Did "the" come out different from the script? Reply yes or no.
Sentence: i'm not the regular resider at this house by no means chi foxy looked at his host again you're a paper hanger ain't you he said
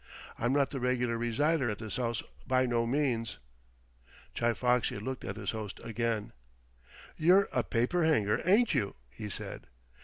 no